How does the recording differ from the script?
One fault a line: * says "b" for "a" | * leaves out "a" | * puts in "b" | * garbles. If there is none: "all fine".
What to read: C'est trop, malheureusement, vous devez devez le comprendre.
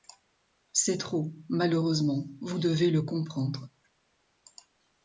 * leaves out "devez"